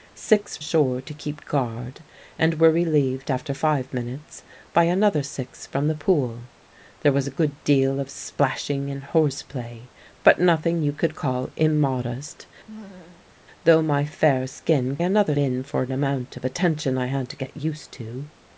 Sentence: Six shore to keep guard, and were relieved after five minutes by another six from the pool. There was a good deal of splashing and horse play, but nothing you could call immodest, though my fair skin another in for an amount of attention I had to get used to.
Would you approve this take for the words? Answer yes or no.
yes